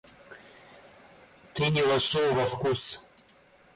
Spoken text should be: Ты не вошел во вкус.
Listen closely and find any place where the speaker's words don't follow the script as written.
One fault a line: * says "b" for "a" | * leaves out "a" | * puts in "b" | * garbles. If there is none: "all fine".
all fine